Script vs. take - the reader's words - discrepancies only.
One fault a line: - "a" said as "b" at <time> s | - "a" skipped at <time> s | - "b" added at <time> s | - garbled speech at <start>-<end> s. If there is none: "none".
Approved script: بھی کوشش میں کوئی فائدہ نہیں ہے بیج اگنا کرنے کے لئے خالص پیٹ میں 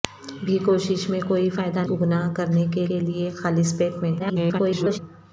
- "نہیں ہے بیج" skipped at 1.8 s
- "کے" added at 2.9 s
- garbled speech at 4.2-5.0 s